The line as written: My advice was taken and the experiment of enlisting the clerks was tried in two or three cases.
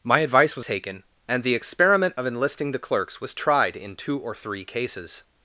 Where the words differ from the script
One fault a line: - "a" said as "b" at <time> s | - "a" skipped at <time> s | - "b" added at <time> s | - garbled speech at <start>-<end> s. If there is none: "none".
none